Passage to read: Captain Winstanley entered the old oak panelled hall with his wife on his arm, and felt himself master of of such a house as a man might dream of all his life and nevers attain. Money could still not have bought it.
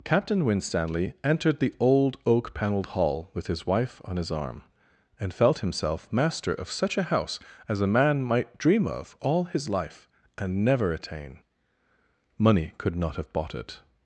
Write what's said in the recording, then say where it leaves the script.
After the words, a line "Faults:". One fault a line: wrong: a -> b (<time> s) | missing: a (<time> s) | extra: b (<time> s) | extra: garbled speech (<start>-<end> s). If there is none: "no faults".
Captain Winstanley entered the old oak panelled hall with his wife on his arm, and felt himself master of such a house as a man might dream of all his life and never attain. Money could not have bought it.
Faults:
missing: of (6.7 s)
wrong: nevers -> never (10.7 s)
missing: still (12.9 s)